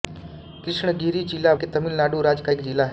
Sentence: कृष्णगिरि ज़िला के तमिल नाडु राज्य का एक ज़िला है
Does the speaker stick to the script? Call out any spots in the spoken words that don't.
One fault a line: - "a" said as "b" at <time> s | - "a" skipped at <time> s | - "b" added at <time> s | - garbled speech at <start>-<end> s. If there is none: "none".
none